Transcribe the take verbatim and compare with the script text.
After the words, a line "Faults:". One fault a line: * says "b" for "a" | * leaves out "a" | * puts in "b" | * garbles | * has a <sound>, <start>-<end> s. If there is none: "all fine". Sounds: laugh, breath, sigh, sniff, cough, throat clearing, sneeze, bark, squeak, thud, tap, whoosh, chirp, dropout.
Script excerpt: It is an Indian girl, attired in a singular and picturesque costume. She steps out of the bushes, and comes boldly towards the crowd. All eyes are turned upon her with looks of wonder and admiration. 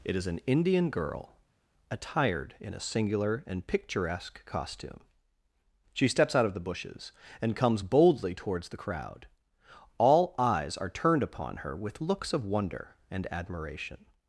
It is an Indian girl, attired in a singular and picturesque costume. She steps out of the bushes, and comes boldly towards the crowd. All eyes are turned upon her with looks of wonder and admiration.
Faults:
all fine